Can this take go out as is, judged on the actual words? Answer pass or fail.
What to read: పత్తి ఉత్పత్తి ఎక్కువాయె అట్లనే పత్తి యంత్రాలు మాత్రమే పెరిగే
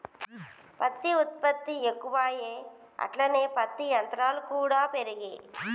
fail